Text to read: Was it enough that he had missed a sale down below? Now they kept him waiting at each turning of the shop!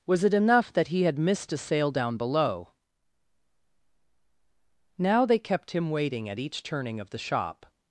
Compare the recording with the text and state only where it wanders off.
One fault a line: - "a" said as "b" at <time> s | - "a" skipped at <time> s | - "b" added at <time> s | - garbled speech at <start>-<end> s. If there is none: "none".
none